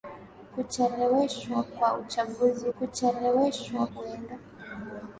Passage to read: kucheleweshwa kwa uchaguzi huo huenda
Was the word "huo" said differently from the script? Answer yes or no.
yes